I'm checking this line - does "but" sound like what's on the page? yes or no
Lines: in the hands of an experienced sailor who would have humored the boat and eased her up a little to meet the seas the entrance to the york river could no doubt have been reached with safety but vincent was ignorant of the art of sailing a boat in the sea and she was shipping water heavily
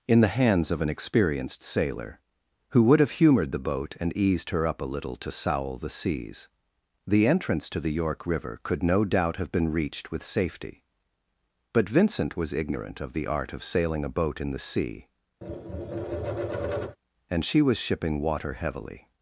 yes